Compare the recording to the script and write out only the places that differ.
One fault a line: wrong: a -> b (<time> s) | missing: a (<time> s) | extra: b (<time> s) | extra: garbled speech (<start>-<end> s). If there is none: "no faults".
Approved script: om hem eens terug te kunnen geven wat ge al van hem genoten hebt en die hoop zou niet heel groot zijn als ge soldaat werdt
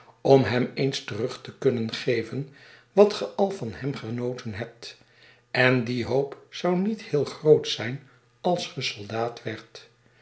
no faults